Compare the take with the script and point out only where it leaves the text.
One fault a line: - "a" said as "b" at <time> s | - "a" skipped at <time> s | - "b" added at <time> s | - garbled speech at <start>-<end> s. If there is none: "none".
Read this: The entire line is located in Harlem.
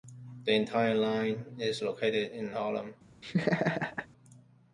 none